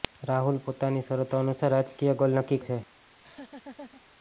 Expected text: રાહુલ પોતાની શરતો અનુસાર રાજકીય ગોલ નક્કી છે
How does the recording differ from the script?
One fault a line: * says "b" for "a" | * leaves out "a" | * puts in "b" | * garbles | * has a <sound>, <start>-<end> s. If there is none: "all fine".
* has a laugh, 3.1-4.0 s